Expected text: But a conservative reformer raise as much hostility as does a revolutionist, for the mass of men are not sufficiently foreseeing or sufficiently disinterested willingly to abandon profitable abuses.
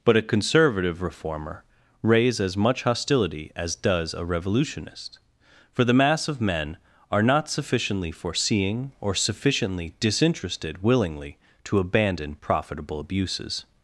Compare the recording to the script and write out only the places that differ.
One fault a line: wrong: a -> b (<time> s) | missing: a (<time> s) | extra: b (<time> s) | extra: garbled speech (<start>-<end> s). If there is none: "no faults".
no faults